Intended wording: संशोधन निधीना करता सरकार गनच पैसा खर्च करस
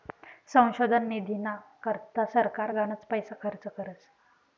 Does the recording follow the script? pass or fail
pass